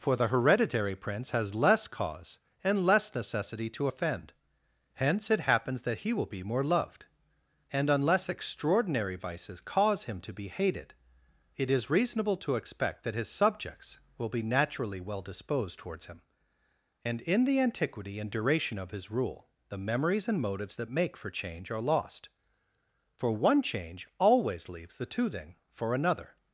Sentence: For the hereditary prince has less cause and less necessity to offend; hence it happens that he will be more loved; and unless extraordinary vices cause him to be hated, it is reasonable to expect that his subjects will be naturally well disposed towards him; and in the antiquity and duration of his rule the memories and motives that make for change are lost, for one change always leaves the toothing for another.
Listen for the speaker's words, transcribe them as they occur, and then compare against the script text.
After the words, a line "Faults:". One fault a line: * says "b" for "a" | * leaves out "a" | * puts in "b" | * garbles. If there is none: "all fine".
For the hereditary prince has less cause and less necessity to offend; hence it happens that he will be more loved; and unless extraordinary vices cause him to be hated, it is reasonable to expect that his subjects will be naturally well disposed towards him; and in the antiquity and duration of his rule the memories and motives that make for change are lost, for one change always leaves the toothing for another.
Faults:
all fine